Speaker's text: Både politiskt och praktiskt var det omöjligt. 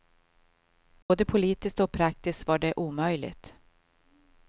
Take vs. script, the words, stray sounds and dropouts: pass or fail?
fail